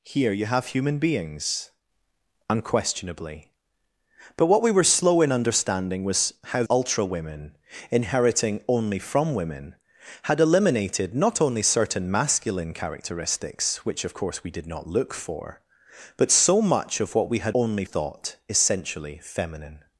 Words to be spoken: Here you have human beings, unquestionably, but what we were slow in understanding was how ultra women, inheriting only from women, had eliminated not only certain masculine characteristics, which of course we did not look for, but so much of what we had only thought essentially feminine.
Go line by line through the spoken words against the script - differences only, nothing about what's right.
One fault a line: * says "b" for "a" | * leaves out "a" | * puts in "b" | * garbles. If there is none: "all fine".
all fine